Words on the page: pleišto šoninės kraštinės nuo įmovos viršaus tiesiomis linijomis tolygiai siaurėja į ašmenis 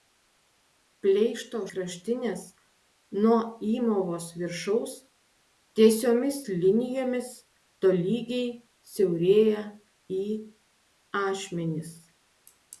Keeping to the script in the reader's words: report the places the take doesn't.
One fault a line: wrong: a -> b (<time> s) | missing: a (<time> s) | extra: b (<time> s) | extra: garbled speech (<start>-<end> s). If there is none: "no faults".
missing: šoninės (1.6 s)